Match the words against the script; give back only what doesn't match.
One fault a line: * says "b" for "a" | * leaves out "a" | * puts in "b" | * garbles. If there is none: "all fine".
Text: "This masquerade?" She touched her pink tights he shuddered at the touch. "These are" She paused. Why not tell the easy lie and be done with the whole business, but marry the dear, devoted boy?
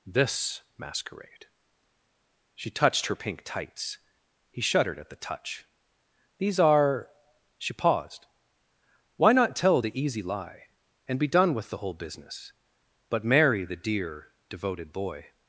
all fine